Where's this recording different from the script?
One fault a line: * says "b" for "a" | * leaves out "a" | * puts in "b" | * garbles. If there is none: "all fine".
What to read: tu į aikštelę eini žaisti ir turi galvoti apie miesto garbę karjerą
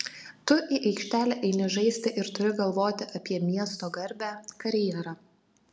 all fine